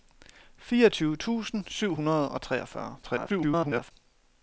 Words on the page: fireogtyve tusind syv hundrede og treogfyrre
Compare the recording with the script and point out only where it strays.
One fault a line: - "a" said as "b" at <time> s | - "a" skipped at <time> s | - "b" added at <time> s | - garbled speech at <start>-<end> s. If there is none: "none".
- garbled speech at 3.0-3.9 s